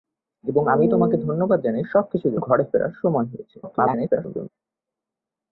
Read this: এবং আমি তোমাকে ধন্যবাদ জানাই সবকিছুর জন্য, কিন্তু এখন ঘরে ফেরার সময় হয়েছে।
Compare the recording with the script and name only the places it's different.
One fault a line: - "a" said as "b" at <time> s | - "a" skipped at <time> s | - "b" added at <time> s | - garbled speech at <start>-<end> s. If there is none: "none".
- "জন্য কিন্তু এখন" skipped at 2.4 s
- garbled speech at 3.6-4.5 s